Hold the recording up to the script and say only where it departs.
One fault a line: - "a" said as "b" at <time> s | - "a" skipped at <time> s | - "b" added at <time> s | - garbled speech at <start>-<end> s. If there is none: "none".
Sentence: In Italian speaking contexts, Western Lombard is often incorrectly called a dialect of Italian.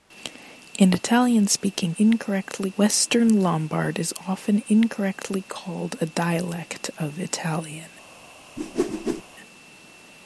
- "contexts" said as "incorrectly" at 2.0 s